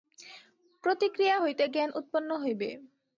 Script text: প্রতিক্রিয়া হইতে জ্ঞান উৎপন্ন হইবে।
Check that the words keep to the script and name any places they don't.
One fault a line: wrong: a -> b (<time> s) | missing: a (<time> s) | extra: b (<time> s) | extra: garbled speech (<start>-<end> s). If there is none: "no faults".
no faults